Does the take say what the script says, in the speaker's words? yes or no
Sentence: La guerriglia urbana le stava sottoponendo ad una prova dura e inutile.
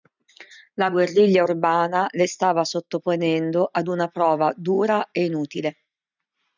yes